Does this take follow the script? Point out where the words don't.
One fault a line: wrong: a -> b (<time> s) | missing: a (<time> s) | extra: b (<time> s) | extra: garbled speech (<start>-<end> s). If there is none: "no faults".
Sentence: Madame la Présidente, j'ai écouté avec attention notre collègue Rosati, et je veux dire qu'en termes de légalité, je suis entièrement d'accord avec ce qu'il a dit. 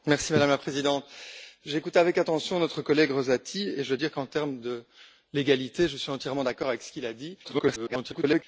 extra: garbled speech (7.4-8.4 s)